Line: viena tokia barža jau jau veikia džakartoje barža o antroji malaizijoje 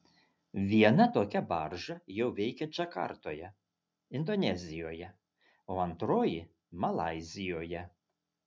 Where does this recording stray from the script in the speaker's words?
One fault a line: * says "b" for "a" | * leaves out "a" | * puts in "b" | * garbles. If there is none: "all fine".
* leaves out "jau"
* says "indonezijoje" for "barža"